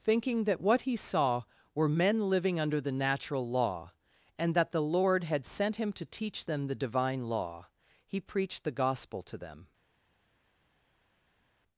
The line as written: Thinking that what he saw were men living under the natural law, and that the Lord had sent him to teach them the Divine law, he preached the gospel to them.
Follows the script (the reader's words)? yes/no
yes